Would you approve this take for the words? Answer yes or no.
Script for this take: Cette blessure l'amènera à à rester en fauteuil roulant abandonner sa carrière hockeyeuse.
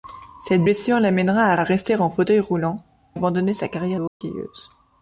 yes